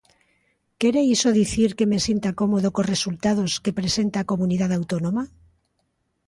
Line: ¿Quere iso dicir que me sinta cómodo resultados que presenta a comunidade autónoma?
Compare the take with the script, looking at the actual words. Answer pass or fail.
fail